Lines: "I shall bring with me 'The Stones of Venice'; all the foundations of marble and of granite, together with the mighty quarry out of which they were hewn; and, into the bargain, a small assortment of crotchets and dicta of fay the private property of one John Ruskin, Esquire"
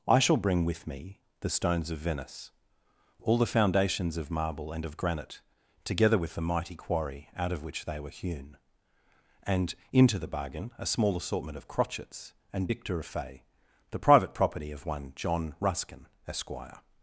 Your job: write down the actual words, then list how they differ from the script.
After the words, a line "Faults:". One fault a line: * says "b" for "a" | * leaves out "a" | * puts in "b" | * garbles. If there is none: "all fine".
"I shall bring with me 'The Stones of Venice'; all the foundations of marble and of granite, together with the mighty quarry out of which they were hewn; and, into the bargain, a small assortment of crotchets and dicta of fay the private property of one John Ruskin, Esquire"
Faults:
all fine